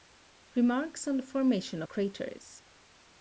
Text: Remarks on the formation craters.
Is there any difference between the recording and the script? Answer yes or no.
no